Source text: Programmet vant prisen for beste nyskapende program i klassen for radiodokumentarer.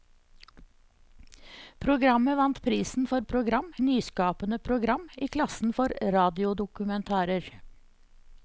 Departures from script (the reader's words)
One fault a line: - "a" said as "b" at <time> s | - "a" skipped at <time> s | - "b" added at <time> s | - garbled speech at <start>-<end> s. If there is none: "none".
- "beste" said as "program" at 3.2 s